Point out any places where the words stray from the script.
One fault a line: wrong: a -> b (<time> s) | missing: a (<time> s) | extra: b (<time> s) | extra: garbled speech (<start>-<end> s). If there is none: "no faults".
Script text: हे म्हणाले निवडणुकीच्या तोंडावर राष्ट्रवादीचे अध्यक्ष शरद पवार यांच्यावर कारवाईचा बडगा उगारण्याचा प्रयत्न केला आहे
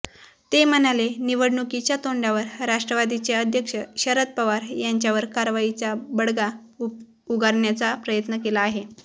wrong: हे -> ते (0.5 s)